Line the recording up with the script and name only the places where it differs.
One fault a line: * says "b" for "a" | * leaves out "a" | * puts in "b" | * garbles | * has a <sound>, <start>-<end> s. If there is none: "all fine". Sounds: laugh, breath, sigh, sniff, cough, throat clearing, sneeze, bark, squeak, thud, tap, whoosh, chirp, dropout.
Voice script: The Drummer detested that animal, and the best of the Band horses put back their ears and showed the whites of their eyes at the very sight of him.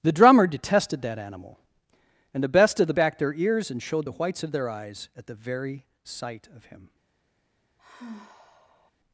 * leaves out "Band horses put"
* has a sigh, 7.8-8.9 s